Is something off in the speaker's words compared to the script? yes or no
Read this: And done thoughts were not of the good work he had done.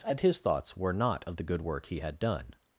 yes